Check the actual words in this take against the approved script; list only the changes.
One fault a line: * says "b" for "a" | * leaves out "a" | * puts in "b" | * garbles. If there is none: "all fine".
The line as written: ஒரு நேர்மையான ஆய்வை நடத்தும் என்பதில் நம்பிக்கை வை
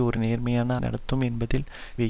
* leaves out "ஆய்வை"
* leaves out "நம்பிக்கை"